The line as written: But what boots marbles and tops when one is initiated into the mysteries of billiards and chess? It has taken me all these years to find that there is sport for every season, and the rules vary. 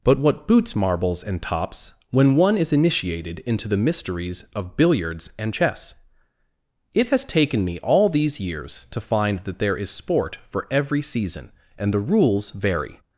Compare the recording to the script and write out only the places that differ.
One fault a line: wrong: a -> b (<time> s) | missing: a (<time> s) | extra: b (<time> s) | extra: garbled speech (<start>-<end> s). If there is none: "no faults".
no faults